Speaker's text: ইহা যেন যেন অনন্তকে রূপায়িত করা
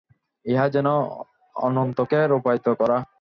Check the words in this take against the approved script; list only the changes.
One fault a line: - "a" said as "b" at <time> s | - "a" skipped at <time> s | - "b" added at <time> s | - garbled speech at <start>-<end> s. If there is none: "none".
- "যেন" skipped at 0.9 s